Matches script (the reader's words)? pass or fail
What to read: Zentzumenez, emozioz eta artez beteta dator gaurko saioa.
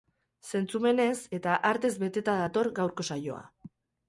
fail